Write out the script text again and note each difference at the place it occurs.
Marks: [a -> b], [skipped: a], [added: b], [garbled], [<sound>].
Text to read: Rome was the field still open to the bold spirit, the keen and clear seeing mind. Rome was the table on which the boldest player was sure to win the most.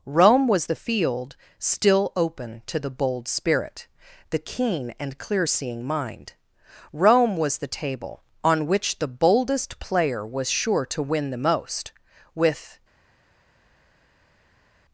Rome was the field still open to the bold spirit, the keen and clear seeing mind. Rome was the table on which the boldest player was sure to win the most. [added: With]